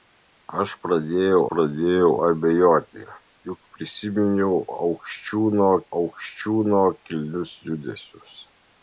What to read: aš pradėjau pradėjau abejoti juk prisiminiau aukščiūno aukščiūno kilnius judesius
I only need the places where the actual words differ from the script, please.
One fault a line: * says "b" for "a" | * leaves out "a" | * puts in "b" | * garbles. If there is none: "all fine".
all fine